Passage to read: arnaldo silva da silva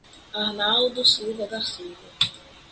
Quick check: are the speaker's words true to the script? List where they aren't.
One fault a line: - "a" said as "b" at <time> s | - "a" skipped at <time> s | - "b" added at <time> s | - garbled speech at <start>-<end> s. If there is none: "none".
none